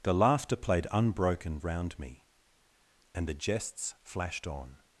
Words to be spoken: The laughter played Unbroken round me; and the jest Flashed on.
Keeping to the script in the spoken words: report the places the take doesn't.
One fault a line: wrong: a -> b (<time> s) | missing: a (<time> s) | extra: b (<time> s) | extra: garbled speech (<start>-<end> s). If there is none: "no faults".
wrong: jest -> jests (3.3 s)